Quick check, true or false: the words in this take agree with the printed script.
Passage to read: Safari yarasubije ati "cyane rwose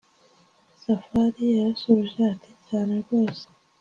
true